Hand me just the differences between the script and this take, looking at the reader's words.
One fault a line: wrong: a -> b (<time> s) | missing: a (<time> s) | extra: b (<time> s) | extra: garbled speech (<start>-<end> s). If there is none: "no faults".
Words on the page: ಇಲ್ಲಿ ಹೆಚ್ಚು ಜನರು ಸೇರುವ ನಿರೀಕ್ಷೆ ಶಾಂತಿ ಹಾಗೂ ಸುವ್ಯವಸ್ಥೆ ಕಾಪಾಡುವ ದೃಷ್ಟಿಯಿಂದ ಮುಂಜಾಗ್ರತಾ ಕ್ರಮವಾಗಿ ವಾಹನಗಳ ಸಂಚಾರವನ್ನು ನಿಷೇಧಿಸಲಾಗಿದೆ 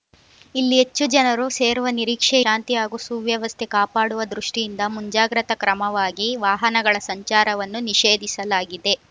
no faults